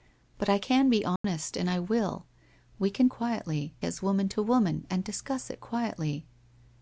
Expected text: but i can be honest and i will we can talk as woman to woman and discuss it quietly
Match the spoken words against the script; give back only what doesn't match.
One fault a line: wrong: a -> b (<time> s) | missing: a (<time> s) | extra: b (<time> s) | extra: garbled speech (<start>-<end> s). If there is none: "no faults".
wrong: talk -> quietly (3.1 s)